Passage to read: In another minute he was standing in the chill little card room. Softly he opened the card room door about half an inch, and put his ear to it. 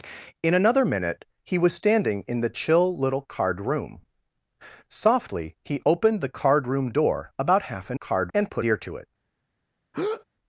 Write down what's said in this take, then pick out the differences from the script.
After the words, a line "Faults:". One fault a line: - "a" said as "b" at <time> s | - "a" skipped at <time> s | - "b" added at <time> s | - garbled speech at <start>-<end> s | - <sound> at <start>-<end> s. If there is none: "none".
In another minute he was standing in the chill little card room. Softly he opened the card room door about half an card, and put ear to it.
Faults:
- "inch" said as "card" at 7.9 s
- "his" skipped at 8.6 s
- breath at 9.9-10.2 s